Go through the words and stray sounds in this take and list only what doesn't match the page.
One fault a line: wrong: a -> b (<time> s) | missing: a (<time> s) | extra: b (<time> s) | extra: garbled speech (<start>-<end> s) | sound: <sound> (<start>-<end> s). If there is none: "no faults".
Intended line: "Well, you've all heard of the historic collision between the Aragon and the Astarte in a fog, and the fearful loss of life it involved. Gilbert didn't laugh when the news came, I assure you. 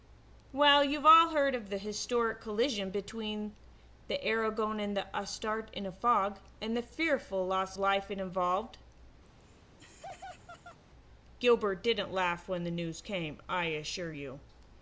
missing: of (7.8 s)
sound: laugh (9.2-10.8 s)